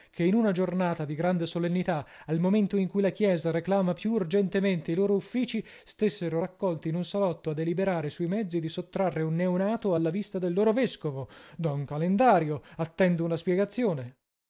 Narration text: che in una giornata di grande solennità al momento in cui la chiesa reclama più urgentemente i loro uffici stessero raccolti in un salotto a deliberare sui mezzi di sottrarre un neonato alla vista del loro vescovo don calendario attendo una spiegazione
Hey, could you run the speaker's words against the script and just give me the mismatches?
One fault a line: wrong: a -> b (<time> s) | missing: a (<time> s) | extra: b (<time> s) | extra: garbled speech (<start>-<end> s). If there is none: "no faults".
no faults